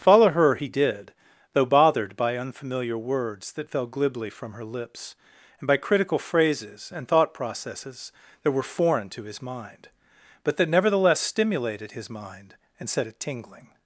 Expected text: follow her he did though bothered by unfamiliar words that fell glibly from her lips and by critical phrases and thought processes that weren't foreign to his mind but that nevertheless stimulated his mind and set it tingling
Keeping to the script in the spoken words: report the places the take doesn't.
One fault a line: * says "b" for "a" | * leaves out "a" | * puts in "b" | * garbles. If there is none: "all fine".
* says "were" for "weren't"